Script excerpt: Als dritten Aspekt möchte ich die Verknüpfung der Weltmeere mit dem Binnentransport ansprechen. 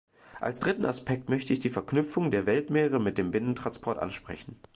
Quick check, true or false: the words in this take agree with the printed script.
true